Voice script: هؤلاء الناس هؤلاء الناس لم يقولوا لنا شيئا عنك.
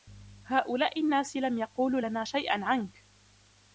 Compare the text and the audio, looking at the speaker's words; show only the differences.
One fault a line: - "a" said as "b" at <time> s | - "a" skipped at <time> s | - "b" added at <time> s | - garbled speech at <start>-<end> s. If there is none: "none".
- "هؤلاء الناس" skipped at 1.4 s